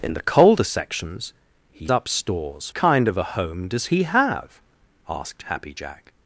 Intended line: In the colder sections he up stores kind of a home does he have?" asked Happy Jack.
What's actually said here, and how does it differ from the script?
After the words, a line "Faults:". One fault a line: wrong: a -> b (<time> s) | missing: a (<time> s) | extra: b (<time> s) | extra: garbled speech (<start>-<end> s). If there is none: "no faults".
In the colder sections he up stores kind of a home does he have?" asked Happy Jack.
Faults:
no faults